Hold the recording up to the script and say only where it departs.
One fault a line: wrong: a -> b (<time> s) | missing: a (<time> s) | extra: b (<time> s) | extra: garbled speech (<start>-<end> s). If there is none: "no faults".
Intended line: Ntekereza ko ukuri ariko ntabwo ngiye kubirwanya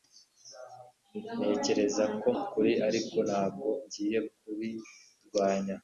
no faults